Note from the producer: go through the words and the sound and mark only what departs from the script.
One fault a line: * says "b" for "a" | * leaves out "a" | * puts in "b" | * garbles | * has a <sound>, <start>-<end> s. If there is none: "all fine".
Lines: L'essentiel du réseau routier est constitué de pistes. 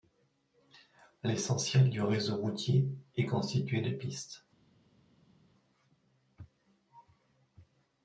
all fine